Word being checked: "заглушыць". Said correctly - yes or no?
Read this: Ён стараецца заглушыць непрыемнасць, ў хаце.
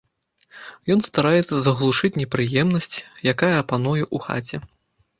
yes